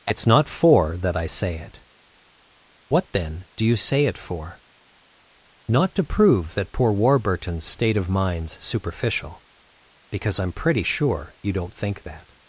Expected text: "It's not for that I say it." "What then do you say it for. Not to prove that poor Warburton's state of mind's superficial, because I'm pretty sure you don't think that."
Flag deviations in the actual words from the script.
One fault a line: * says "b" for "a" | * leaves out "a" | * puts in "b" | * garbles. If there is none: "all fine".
all fine